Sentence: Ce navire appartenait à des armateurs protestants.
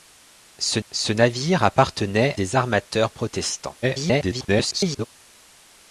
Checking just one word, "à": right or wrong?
wrong